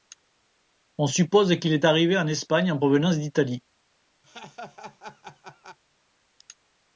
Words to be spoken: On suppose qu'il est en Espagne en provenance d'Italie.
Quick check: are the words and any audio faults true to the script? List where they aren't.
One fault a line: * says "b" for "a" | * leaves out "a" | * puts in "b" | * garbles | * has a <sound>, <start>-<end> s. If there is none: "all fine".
* puts in "arrivé"
* has a laugh, 4.2-5.8 s